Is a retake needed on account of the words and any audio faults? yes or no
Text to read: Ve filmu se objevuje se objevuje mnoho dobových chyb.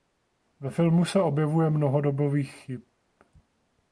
yes